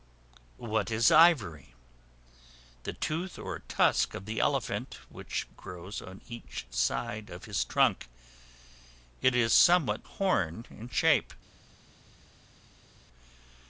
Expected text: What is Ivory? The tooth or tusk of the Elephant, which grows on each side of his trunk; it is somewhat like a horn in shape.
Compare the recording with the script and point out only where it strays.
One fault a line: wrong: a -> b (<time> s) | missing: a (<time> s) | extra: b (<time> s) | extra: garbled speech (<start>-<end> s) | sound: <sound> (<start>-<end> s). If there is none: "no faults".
missing: like a (10.1 s)